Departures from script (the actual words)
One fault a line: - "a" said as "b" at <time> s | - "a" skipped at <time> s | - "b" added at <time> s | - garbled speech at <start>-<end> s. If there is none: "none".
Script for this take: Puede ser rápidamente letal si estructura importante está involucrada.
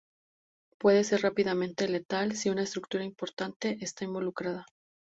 - "una" added at 2.5 s